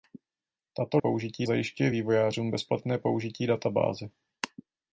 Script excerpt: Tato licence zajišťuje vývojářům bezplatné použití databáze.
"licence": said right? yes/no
no